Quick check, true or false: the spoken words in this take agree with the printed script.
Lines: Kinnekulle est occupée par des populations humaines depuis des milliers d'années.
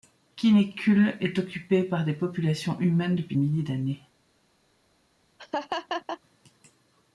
false